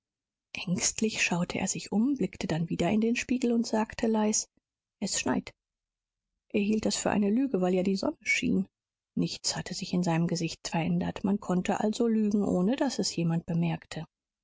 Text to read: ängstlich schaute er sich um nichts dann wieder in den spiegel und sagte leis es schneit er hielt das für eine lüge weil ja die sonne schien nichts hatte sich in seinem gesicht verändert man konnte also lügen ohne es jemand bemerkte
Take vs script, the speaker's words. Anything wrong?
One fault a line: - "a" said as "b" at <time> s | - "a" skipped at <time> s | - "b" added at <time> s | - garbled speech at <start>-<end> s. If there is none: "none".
- "nichts" said as "blickte" at 2.1 s
- "daß" added at 12.8 s